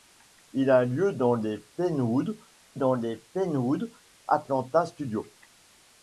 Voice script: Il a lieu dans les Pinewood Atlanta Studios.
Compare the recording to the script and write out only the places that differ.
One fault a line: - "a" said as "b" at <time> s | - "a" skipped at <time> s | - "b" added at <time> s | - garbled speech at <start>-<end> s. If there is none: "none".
- "dans les Pinewood" added at 2.7 s